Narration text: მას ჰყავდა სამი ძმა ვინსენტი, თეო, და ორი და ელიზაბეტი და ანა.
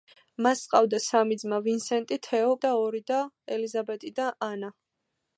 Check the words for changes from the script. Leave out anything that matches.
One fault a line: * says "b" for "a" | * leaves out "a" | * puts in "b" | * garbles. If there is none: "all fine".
all fine